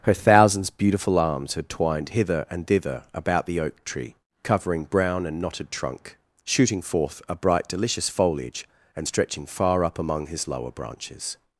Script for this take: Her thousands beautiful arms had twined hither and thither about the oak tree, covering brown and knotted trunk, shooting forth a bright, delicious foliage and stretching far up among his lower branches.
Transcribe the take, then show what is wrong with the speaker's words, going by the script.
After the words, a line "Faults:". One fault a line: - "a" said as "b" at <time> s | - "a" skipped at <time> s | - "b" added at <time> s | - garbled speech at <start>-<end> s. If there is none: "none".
Her thousands beautiful arms had twined hither and thither about the oak tree, covering brown and knotted trunk, shooting forth a bright, delicious foliage and stretching far up among his lower branches.
Faults:
none